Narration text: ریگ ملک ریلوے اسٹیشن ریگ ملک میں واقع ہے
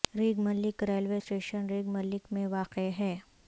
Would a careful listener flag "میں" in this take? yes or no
no